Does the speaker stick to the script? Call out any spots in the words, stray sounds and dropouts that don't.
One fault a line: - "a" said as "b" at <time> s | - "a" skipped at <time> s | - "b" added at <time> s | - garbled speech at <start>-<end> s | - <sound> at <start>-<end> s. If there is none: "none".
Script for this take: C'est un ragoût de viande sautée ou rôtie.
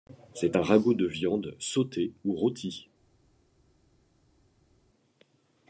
none